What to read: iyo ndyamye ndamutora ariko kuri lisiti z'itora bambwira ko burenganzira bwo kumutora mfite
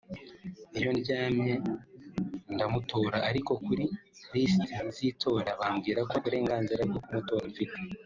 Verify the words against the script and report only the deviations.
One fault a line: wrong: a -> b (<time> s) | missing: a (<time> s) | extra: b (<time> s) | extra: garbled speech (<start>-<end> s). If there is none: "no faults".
no faults